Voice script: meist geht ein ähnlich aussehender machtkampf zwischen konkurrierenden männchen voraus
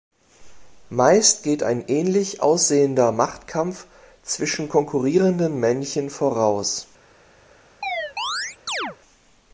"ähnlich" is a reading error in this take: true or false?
false